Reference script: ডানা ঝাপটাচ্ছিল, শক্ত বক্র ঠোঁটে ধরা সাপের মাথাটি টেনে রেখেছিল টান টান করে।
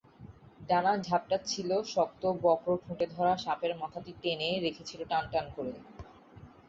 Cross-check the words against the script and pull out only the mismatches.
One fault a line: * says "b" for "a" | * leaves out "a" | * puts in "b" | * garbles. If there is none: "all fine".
all fine